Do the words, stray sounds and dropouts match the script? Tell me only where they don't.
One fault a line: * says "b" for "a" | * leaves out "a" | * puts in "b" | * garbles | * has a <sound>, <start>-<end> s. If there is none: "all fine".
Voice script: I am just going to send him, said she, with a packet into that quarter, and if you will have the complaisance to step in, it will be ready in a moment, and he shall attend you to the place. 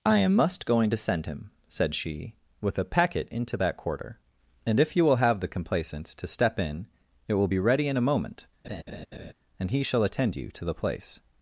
* says "must" for "just"
* has a laugh, 8.6-9.3 s